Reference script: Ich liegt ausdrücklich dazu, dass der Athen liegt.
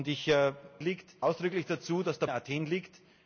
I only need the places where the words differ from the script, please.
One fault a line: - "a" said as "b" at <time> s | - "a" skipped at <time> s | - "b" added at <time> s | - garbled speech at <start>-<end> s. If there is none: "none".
none